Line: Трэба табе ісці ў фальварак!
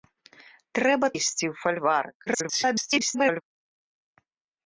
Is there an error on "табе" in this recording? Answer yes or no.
yes